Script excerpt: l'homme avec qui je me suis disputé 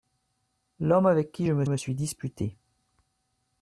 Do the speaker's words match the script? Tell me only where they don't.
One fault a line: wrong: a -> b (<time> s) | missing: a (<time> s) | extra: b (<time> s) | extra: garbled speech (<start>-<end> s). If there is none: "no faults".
extra: me (1.6 s)